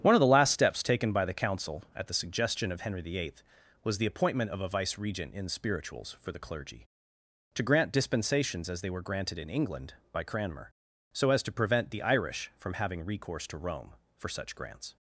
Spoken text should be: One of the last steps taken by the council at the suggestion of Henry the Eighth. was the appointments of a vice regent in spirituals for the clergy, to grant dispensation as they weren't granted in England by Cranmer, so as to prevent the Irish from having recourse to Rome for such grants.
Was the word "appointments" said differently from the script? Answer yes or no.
yes